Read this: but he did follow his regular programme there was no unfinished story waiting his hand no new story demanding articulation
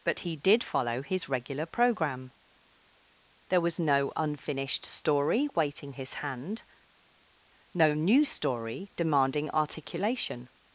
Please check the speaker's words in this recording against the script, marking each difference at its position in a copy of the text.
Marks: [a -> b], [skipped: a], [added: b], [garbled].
but he did follow his regular programme there was no unfinished story waiting his hand no new story demanding articulation